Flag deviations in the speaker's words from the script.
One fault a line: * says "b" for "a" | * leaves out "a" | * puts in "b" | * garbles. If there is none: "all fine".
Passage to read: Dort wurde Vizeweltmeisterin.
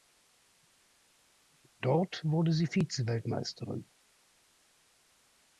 * puts in "sie"